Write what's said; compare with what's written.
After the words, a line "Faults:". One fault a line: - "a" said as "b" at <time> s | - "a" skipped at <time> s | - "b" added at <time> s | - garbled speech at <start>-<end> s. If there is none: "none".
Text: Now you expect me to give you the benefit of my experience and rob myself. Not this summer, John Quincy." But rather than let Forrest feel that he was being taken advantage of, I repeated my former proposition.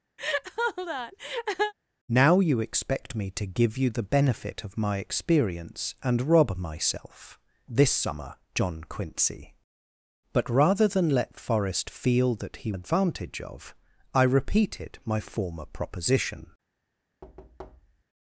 Now you expect me to give you the benefit of my experience and rob myself. This summer, John Quincy." But rather than let Forrest feel that he advantage of, I repeated my former proposition.
Faults:
- "Not" skipped at 7.4 s
- "was being taken" skipped at 12.7 s